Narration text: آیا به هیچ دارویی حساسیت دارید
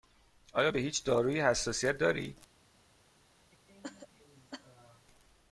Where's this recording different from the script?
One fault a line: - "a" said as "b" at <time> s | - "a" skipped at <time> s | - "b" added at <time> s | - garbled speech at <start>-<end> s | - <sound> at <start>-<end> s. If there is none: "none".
- cough at 3.5-5.1 s